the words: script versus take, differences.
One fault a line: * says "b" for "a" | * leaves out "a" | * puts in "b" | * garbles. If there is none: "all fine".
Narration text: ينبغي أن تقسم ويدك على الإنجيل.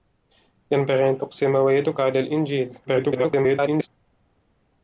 * garbles